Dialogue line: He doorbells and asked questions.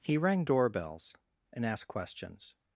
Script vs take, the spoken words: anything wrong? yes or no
yes